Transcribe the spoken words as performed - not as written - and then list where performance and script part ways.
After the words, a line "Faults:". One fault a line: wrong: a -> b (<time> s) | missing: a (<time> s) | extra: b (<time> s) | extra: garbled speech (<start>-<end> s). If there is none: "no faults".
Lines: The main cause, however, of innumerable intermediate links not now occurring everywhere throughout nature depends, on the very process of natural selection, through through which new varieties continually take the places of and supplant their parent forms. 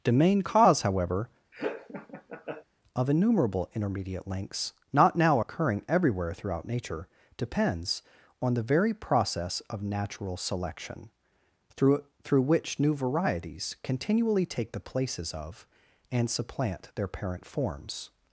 The main cause, however, of innumerable intermediate links not now occurring everywhere throughout nature depends, on the very process of natural selection, through through which new varieties continually take the places of and supplant their parent forms.
Faults:
no faults